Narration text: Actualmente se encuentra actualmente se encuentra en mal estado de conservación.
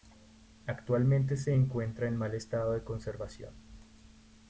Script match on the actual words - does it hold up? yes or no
no